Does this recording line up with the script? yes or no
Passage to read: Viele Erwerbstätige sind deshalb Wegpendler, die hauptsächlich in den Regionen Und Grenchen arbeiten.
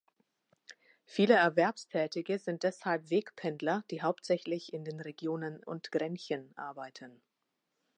yes